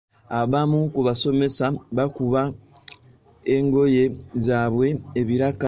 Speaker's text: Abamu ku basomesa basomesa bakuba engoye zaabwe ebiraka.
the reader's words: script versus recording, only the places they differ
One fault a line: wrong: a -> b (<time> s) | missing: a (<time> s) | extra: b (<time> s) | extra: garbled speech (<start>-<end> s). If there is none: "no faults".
missing: basomesa (1.6 s)